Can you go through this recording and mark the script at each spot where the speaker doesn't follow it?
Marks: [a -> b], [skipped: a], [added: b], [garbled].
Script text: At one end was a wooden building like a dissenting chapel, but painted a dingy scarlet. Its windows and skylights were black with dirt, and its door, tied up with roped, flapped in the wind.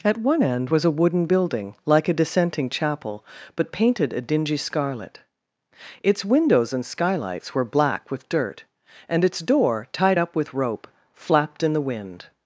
At one end was a wooden building like a dissenting chapel, but painted a dingy scarlet. Its windows and skylights were black with dirt, and its door, tied up with [roped, -> rope] flapped in the wind.